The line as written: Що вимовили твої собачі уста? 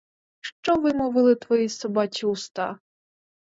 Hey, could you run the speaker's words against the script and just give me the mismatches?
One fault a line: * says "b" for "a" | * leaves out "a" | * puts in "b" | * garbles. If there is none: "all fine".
all fine